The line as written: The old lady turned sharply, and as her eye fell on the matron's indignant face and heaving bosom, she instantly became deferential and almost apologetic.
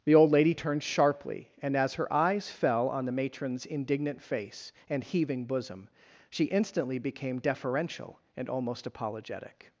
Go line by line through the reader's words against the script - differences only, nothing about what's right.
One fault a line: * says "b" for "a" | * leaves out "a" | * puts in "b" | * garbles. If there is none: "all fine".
* says "eyes" for "eye"